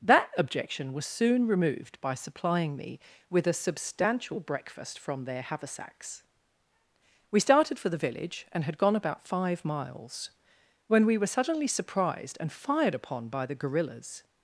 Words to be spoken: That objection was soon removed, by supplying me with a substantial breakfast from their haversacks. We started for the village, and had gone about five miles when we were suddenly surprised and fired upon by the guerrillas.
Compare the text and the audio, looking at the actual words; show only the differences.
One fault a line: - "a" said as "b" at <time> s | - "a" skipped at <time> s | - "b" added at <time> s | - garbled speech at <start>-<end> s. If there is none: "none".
none